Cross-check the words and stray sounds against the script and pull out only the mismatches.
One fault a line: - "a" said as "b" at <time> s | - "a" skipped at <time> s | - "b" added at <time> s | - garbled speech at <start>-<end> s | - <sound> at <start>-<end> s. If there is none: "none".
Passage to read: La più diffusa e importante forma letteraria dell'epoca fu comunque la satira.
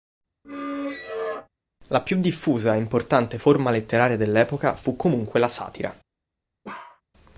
- squeak at 0.4-1.5 s
- bark at 6.6-7.0 s